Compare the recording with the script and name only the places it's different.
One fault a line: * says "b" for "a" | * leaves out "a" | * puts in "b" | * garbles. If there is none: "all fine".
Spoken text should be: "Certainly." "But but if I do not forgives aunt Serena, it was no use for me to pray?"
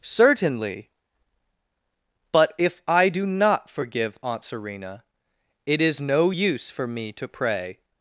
* leaves out "but"
* says "forgive" for "forgives"
* says "is" for "was"